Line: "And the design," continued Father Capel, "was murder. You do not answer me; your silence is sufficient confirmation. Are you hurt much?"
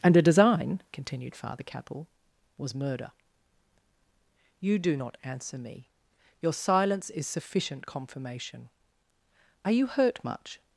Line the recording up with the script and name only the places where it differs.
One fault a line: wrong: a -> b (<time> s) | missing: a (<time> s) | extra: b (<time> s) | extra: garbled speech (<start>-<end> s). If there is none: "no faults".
wrong: the -> a (0.2 s)